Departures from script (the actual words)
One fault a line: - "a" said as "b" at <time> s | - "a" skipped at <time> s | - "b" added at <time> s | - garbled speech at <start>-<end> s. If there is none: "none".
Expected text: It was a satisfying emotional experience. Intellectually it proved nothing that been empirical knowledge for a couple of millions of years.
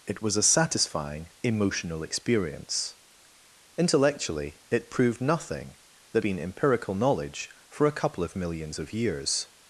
none